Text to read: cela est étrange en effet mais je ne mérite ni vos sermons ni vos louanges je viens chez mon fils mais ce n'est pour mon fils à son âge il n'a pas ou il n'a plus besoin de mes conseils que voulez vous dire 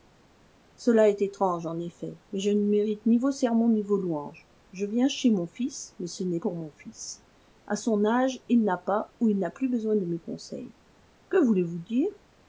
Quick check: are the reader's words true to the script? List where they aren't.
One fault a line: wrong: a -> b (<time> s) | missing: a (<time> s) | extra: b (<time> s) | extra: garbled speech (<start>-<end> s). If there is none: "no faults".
no faults